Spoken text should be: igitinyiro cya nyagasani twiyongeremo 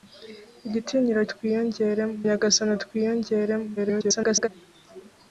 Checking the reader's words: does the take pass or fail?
fail